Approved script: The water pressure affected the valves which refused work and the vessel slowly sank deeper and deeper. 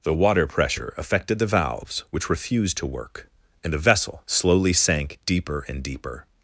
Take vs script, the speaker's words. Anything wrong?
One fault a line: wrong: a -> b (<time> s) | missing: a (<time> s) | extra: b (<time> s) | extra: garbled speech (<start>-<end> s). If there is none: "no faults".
extra: to (2.8 s)